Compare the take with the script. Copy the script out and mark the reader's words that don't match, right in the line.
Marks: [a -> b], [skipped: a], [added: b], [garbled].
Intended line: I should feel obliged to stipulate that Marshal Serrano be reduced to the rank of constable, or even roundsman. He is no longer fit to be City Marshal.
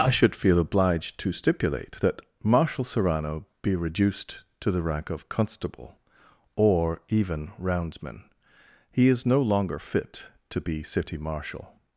I should feel obliged to stipulate that Marshal Serrano be reduced to the rank of constable, or even roundsman. He is no longer fit to be City Marshal.